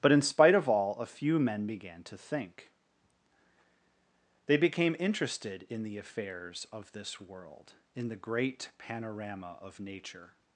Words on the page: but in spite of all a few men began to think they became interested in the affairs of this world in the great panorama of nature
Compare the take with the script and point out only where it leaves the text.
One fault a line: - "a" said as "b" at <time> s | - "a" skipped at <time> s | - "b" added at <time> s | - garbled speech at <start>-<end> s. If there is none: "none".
none